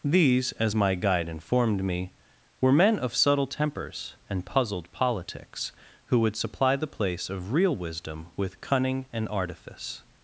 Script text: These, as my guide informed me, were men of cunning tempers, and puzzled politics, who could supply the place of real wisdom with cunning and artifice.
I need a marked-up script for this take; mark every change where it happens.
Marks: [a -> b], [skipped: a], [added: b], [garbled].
These, as my guide informed me, were men of [cunning -> subtle] tempers, and puzzled politics, who [could -> would] supply the place of real wisdom with cunning and artifice.